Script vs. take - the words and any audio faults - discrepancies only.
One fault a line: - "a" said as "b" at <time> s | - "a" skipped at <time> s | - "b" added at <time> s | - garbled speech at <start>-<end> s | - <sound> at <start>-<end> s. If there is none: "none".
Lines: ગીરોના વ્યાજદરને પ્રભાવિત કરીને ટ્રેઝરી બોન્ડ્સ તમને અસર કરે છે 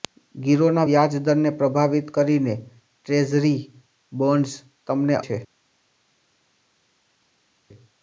- "અસર કરે" skipped at 5.2 s